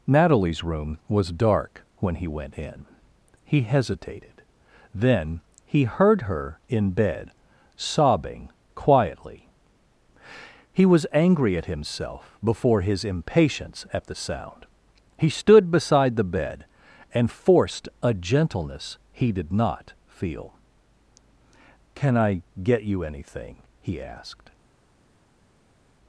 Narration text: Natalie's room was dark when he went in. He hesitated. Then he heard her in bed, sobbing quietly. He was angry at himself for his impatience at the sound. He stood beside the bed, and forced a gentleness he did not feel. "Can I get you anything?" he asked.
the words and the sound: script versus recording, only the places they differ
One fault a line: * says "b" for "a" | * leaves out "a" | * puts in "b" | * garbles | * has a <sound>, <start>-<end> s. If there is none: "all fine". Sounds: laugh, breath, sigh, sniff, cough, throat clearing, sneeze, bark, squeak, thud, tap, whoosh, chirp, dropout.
* says "before" for "for"